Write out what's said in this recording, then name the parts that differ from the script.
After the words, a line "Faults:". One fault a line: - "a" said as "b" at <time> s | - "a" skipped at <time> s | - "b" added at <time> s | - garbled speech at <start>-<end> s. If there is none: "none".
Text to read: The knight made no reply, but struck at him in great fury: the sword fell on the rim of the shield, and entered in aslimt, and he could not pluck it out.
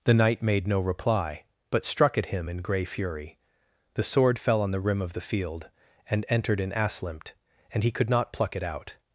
The knight made no reply, but struck at him in grey fury: the sword fell on the rim of the field, and entered in aslimt, and he could not pluck it out.
Faults:
- "great" said as "grey" at 2.6 s
- "shield" said as "field" at 5.2 s